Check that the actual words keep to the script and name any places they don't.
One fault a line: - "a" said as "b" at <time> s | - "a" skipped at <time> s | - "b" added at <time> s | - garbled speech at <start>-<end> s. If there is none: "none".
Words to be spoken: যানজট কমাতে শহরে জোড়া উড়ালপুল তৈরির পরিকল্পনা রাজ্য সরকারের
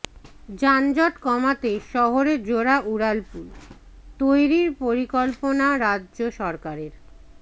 none